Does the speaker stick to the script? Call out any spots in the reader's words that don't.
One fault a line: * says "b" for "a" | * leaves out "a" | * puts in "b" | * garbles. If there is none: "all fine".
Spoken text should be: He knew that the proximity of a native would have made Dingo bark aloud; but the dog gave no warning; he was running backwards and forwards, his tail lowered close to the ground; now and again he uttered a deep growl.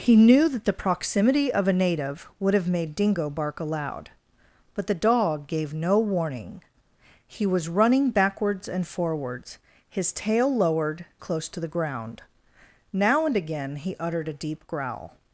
all fine